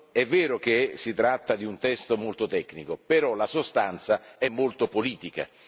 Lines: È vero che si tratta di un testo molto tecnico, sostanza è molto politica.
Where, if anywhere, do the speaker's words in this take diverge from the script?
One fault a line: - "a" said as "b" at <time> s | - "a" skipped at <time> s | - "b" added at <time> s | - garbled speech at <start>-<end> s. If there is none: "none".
- "però la" added at 3.0 s